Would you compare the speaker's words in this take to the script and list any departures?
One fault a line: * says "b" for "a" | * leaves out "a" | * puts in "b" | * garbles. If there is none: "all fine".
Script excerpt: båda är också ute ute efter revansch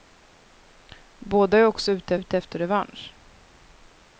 all fine